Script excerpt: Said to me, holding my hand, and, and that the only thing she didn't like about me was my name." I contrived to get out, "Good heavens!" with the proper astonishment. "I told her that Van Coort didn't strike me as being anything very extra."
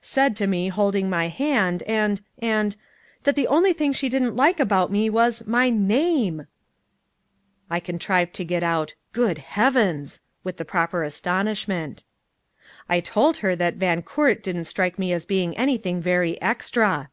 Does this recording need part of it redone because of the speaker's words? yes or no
no